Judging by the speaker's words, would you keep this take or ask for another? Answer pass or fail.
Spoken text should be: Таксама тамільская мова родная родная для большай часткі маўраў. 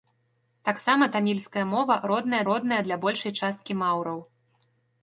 pass